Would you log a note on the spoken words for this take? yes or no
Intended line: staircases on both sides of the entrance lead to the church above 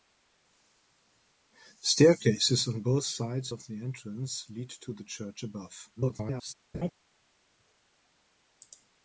yes